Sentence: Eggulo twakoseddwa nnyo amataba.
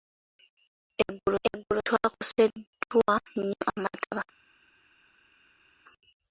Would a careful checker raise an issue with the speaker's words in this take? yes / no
yes